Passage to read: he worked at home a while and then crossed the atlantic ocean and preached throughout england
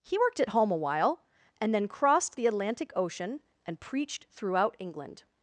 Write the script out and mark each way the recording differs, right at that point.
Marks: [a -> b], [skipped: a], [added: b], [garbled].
he worked at home a while and then crossed the atlantic ocean and preached throughout england